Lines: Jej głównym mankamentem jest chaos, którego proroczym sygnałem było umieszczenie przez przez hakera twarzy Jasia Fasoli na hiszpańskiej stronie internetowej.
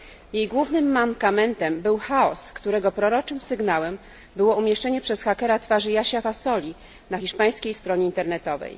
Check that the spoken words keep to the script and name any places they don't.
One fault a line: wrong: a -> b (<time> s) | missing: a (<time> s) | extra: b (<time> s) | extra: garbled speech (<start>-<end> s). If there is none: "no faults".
wrong: jest -> był (1.8 s)
missing: przez (5.2 s)